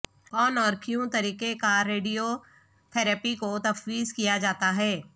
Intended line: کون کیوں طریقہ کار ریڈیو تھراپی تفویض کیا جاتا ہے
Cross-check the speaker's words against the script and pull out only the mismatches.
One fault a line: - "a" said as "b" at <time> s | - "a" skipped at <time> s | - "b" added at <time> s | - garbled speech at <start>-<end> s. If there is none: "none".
- "اور" added at 0.6 s
- "کو" added at 3.4 s